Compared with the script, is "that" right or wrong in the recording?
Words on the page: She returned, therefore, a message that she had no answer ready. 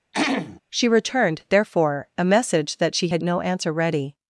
right